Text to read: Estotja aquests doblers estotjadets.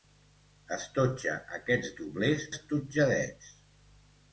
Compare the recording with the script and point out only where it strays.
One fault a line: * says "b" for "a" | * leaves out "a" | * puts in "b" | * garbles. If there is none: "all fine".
all fine